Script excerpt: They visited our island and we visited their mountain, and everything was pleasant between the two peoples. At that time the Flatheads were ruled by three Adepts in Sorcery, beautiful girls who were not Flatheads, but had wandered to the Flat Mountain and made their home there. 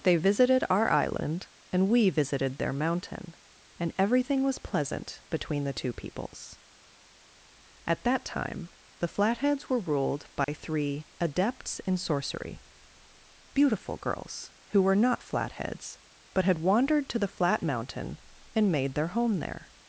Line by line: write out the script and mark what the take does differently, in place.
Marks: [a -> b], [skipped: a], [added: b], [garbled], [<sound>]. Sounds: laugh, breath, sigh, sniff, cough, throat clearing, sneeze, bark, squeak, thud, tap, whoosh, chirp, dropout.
They visited our island and we visited their mountain, and everything was pleasant between the two peoples. At that time the Flatheads were ruled by [dropout] three Adepts in Sorcery, beautiful girls who were not Flatheads, but had wandered to the Flat Mountain and made their home there.